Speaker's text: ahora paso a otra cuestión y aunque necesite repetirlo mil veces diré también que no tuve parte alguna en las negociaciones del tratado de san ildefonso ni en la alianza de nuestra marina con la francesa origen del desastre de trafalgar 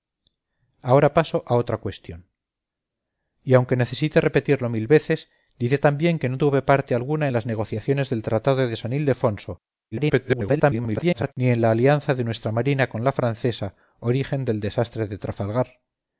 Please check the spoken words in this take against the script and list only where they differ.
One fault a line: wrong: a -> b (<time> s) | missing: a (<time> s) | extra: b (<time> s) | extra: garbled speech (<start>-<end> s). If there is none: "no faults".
extra: garbled speech (9.9-11.3 s)